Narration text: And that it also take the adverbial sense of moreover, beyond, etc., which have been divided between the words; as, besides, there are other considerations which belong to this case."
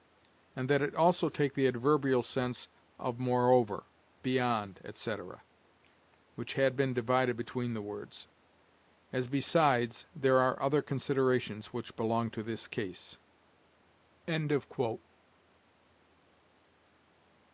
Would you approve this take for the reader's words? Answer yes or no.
no